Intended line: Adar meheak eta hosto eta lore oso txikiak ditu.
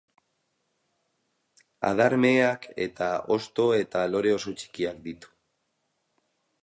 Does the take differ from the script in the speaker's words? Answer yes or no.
no